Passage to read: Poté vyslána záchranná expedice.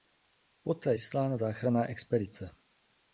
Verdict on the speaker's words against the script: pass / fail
pass